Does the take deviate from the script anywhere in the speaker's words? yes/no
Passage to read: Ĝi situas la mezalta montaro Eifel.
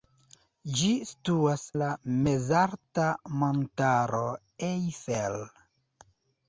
no